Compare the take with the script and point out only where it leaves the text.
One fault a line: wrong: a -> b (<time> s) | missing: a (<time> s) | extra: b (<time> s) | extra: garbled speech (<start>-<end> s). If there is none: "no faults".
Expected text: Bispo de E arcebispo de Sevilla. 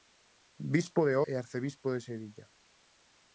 no faults